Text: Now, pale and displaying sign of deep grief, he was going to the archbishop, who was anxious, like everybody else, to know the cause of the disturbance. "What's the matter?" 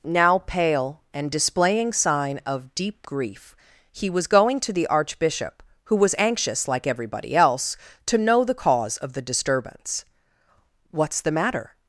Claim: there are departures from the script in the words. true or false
false